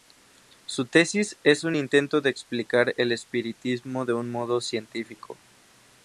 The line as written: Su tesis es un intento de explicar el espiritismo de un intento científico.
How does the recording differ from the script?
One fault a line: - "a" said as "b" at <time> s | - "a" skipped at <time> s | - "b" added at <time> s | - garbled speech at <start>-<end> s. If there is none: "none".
- "intento" said as "modo" at 4.3 s